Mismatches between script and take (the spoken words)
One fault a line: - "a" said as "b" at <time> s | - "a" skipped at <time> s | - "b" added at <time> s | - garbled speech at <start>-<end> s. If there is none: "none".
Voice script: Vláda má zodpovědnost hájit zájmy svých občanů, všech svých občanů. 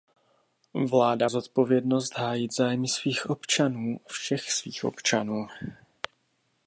- "má" skipped at 1.3 s